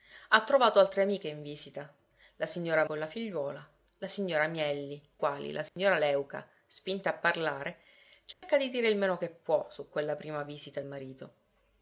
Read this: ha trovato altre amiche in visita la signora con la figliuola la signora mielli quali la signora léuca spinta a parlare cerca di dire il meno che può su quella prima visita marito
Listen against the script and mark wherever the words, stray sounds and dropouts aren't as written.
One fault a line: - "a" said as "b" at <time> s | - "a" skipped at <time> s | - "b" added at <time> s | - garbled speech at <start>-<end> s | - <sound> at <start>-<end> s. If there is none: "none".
- dropout at 5.7-5.8 s
- dropout at 8.3-8.4 s